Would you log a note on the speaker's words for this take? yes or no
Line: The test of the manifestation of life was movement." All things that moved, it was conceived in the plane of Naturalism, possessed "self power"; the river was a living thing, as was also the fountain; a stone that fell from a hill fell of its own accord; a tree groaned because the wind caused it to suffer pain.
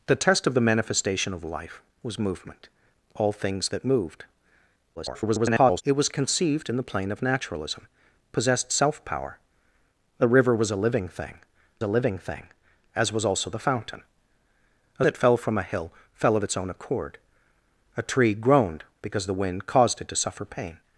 yes